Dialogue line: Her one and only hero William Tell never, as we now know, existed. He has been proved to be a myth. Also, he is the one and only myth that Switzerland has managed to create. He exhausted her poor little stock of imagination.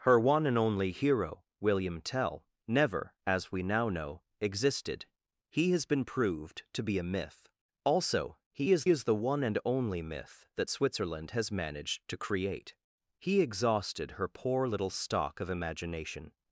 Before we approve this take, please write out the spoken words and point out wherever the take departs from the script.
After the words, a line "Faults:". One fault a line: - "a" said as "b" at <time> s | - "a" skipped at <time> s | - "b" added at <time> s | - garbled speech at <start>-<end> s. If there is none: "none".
Her one and only hero William Tell never, as we now know, existed. He has been proved to be a myth. Also, he is is the one and only myth that Switzerland has managed to create. He exhausted her poor little stock of imagination.
Faults:
- "is" added at 8.9 s